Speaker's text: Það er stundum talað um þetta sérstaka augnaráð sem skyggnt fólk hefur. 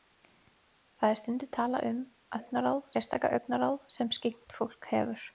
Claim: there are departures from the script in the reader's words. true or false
true